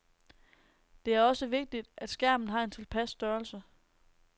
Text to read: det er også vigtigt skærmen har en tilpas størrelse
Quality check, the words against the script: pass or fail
fail